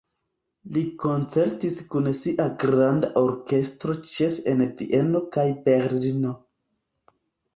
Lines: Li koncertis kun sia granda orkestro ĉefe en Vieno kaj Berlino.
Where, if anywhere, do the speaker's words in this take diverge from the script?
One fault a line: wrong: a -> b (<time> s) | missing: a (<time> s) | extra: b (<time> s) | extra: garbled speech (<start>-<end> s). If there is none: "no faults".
no faults